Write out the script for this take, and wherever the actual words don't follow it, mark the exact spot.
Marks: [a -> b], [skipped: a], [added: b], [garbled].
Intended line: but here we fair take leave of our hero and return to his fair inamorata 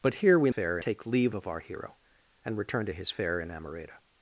but here we fair take leave of our hero and return to his fair inamorata